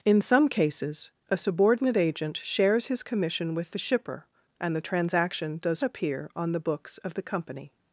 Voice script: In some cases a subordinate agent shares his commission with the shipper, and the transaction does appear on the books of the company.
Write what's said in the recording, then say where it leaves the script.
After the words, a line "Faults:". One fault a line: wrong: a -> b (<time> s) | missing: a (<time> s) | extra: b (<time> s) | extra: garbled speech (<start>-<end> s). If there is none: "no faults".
In some cases a subordinate agent shares his commission with the shipper, and the transaction does appear on the books of the company.
Faults:
no faults